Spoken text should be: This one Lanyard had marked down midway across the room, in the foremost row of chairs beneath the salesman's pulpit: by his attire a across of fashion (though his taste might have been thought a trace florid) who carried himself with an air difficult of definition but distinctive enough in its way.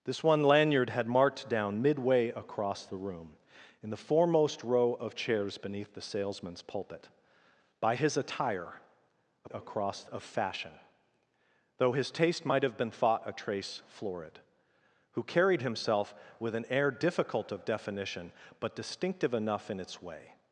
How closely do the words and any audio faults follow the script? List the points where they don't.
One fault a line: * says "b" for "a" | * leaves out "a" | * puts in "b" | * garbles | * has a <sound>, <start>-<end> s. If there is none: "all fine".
all fine